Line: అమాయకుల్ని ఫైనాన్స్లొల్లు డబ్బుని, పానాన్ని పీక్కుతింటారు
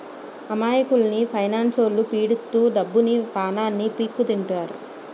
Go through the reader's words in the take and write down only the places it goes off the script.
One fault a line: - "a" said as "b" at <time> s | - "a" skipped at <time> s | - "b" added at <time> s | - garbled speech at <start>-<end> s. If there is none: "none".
- "పీడిత్తు" added at 2.1 s